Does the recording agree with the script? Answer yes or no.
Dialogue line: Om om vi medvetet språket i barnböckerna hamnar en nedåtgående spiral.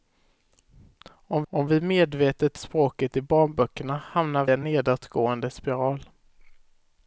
yes